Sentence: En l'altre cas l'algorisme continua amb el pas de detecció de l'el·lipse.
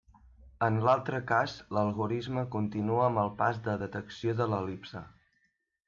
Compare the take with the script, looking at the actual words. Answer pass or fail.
pass